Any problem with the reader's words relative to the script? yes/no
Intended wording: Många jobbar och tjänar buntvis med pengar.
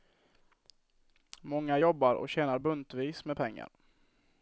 no